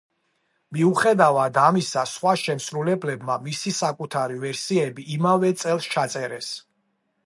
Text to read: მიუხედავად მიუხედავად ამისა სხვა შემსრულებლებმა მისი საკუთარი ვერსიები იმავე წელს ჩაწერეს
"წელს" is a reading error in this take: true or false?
false